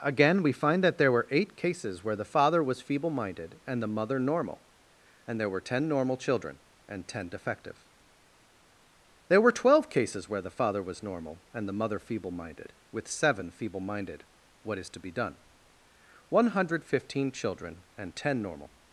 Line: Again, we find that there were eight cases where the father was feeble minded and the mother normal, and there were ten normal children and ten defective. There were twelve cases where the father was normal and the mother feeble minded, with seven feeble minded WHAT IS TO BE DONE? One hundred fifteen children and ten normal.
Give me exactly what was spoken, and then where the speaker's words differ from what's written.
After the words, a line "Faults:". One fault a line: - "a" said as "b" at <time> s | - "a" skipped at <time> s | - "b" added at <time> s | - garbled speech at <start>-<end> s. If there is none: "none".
Again, we find that there were eight cases where the father was feeble minded and the mother normal, and there were ten normal children and ten defective. There were twelve cases where the father was normal and the mother feeble minded, with seven feeble minded WHAT IS TO BE DONE? One hundred fifteen children and ten normal.
Faults:
none